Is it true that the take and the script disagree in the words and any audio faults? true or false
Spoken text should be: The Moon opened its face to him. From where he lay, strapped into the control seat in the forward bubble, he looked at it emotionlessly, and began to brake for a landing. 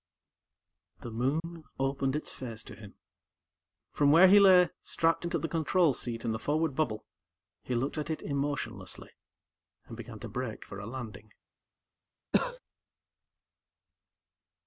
true